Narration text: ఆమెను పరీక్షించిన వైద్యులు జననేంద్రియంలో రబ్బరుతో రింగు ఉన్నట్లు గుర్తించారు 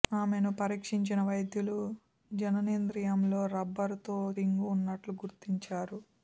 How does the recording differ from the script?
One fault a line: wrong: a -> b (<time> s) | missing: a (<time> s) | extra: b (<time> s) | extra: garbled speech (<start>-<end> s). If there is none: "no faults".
no faults